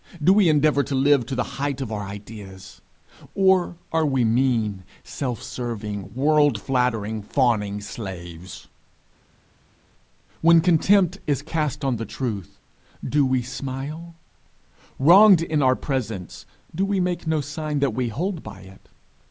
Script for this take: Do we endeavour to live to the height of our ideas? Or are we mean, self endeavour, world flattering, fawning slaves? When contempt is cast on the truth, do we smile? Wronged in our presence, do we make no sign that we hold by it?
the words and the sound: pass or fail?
fail